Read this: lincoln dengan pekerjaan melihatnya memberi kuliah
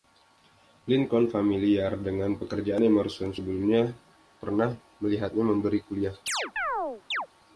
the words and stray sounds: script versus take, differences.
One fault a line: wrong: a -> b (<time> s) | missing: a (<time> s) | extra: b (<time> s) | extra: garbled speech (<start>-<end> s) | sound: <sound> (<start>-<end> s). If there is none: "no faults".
extra: familiar (1.3 s)
extra: emerson sebelumnya pernah (2.8 s)
sound: chirp (6.3-7.3 s)